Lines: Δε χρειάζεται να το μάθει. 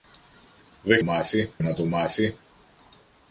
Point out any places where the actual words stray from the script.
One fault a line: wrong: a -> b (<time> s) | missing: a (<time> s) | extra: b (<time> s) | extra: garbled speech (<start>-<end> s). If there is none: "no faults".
wrong: χρειάζεται -> μάθει (1.0 s)